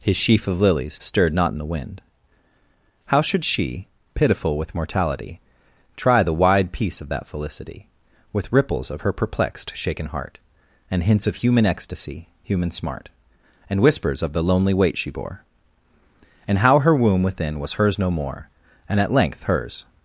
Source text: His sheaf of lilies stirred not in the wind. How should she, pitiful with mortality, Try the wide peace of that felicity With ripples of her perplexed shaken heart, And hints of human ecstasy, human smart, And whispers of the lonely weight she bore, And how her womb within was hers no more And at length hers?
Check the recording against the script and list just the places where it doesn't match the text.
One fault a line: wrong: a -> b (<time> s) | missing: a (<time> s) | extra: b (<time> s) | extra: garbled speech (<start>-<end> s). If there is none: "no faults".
no faults